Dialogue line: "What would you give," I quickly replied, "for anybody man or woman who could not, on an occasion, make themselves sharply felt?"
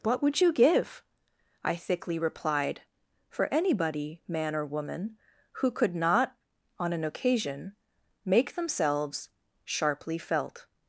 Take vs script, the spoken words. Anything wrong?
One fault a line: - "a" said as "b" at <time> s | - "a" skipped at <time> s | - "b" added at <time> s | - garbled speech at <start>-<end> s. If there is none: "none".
- "quickly" said as "thickly" at 1.8 s